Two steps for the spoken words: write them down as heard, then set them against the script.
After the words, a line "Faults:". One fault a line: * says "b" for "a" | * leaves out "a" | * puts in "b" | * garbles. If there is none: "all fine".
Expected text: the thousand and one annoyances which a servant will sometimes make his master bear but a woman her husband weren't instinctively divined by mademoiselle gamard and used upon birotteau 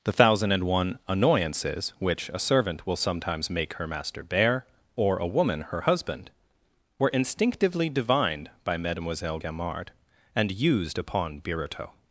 the thousand and one annoyances which a servant will sometimes make her master bear or a woman her husband were instinctively divined by mademoiselle gamard and used upon birotteau
Faults:
* says "her" for "his"
* says "or" for "but"
* says "were" for "weren't"